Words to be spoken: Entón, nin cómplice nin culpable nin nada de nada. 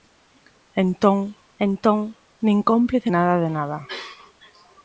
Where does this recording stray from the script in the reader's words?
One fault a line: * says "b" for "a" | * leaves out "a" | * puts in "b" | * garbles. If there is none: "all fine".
* puts in "entón"
* leaves out "nin culpable nin"